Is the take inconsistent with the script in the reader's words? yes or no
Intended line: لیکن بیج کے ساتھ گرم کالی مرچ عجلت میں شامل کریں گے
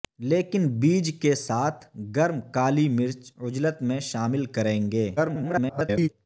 yes